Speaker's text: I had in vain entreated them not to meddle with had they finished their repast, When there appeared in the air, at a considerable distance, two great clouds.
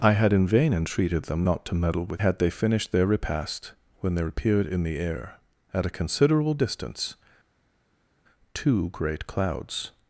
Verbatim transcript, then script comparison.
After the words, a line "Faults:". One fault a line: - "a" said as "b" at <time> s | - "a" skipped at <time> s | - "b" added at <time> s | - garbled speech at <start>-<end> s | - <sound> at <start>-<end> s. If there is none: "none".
I had in vain entreated them not to meddle with had they finished their repast, When there appeared in the air, at a considerable distance, two great clouds.
Faults:
none